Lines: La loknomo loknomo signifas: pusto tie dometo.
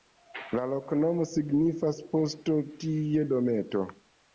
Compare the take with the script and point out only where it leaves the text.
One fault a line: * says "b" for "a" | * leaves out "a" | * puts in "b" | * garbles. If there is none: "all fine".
* leaves out "loknomo"